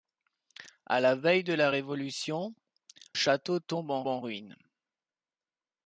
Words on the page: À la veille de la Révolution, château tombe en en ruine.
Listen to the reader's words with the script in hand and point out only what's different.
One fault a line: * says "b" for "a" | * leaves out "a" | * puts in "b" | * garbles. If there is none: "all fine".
all fine